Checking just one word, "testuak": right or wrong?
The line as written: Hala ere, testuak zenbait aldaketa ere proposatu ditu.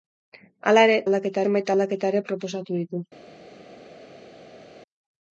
wrong